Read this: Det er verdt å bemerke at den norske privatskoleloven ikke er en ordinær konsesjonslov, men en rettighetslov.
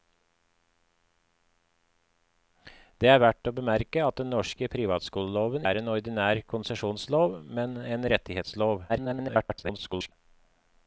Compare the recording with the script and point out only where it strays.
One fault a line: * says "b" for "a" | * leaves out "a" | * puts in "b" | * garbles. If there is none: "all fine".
* leaves out "ikke"
* garbles